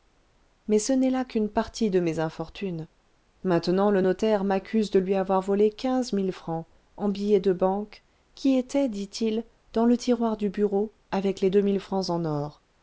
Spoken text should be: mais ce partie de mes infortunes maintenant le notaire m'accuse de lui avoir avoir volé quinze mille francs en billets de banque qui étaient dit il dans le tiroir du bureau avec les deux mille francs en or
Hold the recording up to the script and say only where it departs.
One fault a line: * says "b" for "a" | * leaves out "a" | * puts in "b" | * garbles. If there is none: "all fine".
* puts in "n'est là qu'une"
* leaves out "avoir"